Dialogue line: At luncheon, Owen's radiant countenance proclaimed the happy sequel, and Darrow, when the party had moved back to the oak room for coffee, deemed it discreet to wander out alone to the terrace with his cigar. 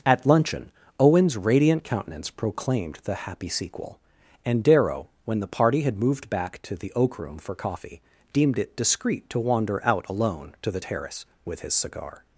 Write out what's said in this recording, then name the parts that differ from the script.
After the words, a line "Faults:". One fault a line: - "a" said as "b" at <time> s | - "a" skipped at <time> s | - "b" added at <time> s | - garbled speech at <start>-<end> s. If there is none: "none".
At luncheon, Owen's radiant countenance proclaimed the happy sequel, and Darrow, when the party had moved back to the oak room for coffee, deemed it discreet to wander out alone to the terrace with his cigar.
Faults:
none